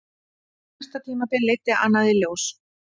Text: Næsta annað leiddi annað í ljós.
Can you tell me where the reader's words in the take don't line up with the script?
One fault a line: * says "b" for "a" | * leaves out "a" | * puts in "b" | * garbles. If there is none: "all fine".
* says "tímabil" for "annað"